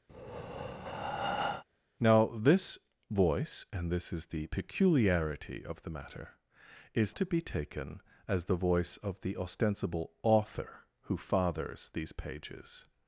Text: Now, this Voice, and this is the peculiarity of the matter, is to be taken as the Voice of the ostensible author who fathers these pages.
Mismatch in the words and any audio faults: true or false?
true